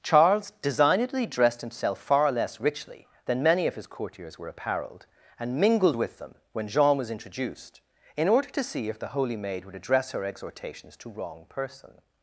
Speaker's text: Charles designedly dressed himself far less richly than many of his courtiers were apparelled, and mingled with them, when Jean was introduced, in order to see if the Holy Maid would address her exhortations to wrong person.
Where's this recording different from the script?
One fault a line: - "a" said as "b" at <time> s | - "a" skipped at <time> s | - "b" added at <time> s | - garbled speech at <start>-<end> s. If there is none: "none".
none